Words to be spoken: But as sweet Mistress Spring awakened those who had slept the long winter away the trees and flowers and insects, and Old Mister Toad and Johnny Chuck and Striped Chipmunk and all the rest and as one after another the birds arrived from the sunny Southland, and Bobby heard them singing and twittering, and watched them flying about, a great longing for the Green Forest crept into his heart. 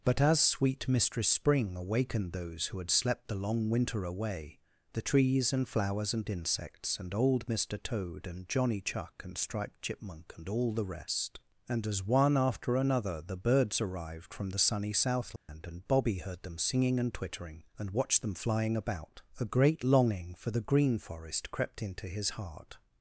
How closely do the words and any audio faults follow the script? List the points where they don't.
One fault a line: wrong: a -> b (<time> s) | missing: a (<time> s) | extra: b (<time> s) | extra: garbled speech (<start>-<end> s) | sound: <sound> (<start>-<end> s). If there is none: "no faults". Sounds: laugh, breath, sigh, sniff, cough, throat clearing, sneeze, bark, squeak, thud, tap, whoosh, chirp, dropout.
sound: dropout (15.4-15.5 s)